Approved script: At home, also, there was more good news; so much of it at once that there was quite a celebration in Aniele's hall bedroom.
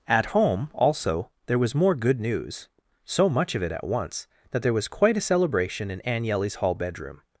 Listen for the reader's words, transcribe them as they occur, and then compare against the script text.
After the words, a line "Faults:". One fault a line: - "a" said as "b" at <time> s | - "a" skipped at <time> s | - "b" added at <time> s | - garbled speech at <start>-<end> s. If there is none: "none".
At home, also, there was more good news; so much of it at once that there was quite a celebration in Aniele's hall bedroom.
Faults:
none